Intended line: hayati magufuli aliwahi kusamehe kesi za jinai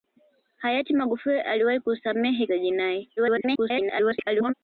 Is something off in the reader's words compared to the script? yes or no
yes